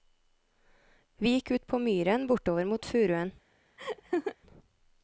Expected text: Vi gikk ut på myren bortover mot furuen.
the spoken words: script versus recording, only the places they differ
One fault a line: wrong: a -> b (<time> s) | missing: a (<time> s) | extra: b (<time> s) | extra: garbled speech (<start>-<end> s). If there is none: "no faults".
no faults